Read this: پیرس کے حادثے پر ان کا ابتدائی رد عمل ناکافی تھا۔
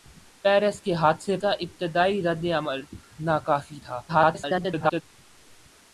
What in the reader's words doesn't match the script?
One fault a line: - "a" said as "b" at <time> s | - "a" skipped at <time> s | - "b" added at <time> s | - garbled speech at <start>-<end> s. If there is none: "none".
- "پر ان" skipped at 1.4 s
- garbled speech at 4.1-5.0 s